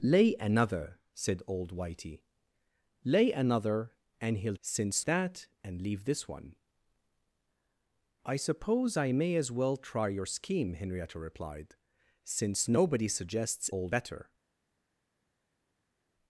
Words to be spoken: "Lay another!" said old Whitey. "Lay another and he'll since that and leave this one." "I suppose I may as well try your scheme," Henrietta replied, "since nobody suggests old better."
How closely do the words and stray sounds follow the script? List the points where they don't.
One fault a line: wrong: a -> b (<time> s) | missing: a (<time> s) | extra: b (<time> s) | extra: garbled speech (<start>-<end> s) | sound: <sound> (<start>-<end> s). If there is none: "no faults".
no faults